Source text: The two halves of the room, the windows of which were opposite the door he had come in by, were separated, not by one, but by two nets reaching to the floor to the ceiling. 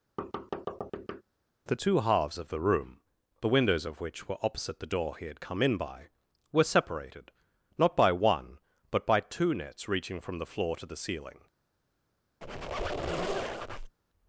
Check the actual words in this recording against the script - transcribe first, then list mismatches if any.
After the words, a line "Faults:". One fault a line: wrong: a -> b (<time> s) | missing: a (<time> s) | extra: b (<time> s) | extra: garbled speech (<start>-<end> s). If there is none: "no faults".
The two halves of the room, the windows of which were opposite the door he had come in by, were separated, not by one, but by two nets reaching from the floor to the ceiling.
Faults:
wrong: to -> from (10.2 s)